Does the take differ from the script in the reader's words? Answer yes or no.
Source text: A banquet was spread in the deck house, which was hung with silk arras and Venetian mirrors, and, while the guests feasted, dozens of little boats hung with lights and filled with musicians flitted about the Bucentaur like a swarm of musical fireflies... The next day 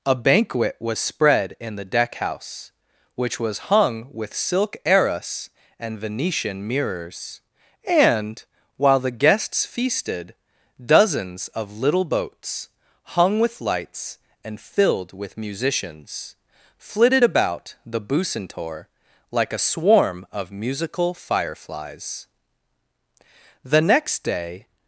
no